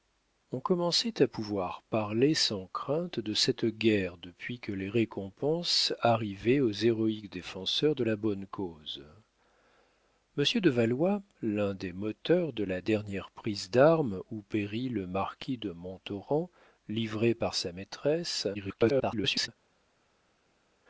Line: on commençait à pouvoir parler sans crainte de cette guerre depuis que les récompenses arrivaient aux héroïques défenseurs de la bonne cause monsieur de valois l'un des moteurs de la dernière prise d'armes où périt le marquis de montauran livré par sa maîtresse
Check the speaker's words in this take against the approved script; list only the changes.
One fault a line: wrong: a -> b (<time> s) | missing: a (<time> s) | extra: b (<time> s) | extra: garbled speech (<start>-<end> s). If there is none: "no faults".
extra: garbled speech (18.5-19.5 s)